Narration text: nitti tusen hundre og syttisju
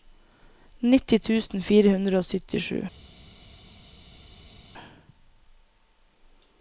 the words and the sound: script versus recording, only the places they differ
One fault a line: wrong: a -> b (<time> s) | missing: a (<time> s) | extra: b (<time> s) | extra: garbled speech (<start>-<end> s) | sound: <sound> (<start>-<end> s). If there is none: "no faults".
extra: fire (1.7 s)